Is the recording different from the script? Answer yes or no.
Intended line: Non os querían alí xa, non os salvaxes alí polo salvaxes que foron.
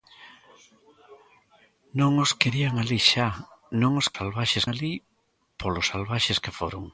no